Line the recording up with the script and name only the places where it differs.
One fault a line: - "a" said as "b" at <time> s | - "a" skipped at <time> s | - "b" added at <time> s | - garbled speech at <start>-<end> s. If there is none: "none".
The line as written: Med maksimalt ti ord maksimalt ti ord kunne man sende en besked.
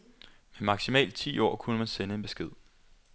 - "maksimalt ti ord" skipped at 1.6 s